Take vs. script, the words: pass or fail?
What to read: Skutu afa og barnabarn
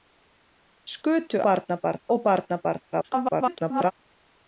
fail